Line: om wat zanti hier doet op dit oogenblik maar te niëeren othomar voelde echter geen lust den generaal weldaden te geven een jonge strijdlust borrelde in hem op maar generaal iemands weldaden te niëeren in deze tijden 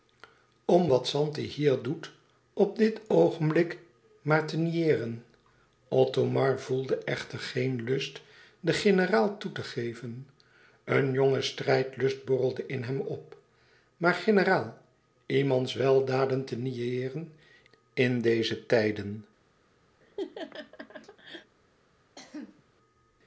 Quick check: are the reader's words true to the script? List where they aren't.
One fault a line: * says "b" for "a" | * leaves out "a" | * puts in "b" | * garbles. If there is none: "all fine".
* says "toe" for "weldaden"